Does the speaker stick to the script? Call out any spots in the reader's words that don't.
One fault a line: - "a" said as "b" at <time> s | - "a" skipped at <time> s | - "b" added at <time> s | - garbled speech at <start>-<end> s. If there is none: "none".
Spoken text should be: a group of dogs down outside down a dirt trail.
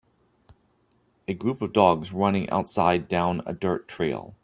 - "down" said as "running" at 2.1 s